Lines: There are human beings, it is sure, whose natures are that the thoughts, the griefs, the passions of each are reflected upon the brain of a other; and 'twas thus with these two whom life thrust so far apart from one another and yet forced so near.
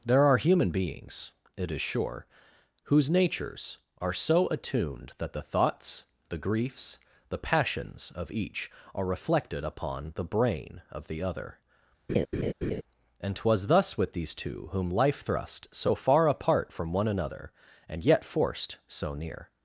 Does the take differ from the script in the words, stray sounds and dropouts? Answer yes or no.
yes